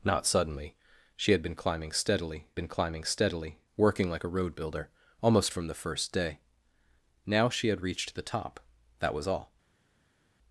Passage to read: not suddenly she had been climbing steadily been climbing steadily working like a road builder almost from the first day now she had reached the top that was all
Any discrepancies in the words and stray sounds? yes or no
no